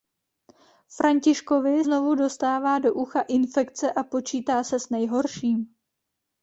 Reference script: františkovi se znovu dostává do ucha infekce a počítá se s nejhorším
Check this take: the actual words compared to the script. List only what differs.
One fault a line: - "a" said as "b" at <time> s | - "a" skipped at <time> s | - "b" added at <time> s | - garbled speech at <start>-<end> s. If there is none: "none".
- "se" skipped at 1.9 s